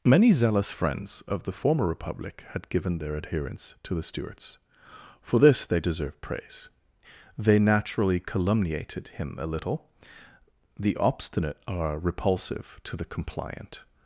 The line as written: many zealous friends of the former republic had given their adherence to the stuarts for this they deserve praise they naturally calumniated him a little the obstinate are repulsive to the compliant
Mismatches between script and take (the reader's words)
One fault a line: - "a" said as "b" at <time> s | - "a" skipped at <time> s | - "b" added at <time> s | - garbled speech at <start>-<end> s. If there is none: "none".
none